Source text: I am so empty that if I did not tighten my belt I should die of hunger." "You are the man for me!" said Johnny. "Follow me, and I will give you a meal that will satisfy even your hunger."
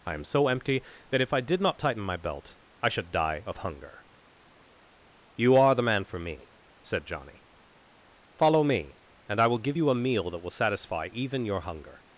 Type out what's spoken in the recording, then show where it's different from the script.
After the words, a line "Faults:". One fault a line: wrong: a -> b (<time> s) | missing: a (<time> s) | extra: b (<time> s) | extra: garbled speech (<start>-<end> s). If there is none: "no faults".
I am so empty that if I did not tighten my belt I should die of hunger." "You are the man for me!" said Johnny. "Follow me, and I will give you a meal that will satisfy even your hunger."
Faults:
no faults